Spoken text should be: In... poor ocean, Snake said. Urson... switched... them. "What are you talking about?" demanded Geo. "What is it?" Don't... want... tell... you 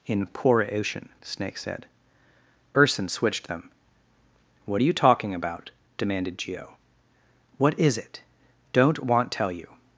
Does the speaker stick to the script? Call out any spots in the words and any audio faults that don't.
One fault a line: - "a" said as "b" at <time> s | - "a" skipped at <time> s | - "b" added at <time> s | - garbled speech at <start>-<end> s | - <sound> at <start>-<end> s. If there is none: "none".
none